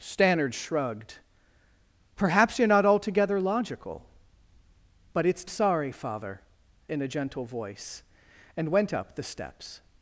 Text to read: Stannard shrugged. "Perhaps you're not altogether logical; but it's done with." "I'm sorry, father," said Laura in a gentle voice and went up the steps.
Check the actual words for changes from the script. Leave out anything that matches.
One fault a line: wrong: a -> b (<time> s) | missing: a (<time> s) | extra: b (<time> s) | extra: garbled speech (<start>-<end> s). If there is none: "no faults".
missing: done with I'm (5.5 s)
missing: said Laura (6.4 s)